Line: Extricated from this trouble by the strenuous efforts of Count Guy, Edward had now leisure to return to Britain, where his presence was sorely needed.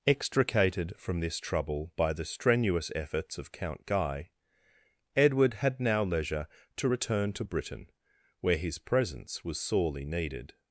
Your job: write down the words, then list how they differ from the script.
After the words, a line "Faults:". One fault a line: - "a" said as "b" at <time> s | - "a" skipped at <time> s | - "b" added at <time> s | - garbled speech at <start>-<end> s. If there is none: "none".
Extricated from this trouble by the strenuous efforts of Count Guy, Edward had now leisure to return to Britain, where his presence was sorely needed.
Faults:
none